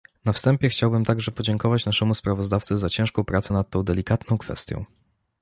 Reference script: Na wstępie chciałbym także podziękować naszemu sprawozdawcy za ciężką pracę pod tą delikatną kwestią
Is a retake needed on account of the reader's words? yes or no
yes